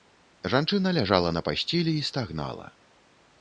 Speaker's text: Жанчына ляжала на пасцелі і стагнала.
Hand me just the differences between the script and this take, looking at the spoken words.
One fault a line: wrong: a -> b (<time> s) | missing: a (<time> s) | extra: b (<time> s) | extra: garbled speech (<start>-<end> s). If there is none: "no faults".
no faults